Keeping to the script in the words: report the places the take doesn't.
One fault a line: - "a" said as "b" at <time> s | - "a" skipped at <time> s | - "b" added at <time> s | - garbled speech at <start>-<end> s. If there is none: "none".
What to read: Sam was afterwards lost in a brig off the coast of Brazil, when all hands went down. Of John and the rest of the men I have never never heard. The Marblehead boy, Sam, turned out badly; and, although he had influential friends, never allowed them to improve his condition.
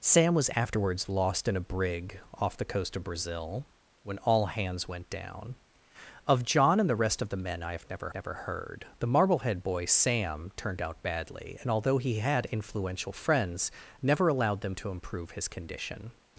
none